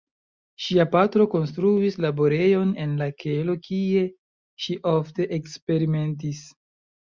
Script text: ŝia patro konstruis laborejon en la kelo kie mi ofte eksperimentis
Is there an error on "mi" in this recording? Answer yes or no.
yes